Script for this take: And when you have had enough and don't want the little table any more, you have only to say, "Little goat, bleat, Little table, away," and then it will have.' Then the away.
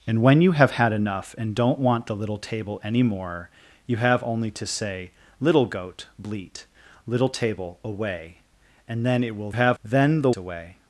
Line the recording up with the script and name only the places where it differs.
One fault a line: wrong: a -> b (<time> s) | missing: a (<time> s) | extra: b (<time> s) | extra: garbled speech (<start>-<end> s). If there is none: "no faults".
no faults